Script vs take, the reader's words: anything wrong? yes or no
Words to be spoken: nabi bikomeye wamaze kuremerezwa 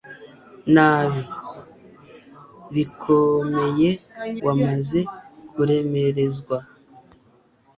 no